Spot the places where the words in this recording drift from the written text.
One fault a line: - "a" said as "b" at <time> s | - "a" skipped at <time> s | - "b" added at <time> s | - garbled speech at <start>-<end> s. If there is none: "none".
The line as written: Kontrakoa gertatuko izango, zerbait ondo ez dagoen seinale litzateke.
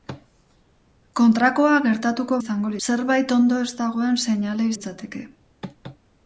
none